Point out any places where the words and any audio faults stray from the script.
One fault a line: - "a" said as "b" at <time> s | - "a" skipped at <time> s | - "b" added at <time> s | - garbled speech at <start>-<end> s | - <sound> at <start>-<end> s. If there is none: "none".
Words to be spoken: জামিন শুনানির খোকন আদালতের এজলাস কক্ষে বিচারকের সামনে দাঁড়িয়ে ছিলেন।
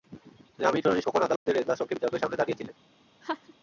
- dropout at 1.4-1.5 s
- laugh at 3.2-3.5 s